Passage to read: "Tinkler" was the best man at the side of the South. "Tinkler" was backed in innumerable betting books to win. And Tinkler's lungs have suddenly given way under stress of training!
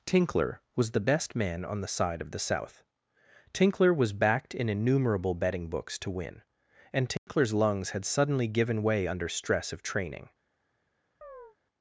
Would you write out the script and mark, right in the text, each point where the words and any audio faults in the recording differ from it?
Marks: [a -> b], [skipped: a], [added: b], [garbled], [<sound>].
"Tinkler" was the best man [at -> on] the side of the South. "Tinkler" was backed in innumerable betting books to win. And Tinkler's [dropout] lungs [have -> had] suddenly given way under stress of training! [chirp]